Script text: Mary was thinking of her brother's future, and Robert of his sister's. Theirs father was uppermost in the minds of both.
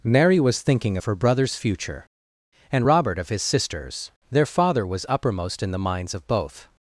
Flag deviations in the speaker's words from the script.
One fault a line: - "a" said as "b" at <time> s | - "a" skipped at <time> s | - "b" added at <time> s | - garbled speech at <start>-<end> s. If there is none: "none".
- "Theirs" said as "Their" at 4.3 s